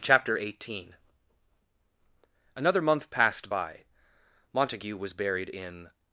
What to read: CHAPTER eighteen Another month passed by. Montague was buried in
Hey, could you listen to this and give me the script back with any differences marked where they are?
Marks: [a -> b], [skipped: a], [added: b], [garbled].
CHAPTER eighteen Another month passed by. Montague was buried in